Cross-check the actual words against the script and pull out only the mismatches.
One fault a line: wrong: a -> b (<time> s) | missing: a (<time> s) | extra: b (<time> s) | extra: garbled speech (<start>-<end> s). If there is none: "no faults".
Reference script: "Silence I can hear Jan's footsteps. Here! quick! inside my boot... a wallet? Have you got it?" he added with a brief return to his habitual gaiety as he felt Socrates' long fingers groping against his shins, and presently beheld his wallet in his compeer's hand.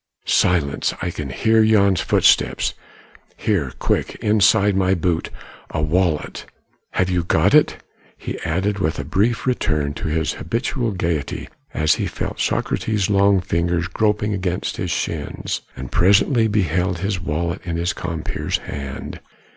no faults